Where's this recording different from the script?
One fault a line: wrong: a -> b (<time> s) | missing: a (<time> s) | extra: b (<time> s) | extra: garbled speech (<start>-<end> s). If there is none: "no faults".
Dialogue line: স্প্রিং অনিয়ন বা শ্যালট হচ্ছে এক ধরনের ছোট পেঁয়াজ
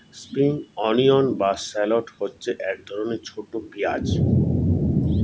no faults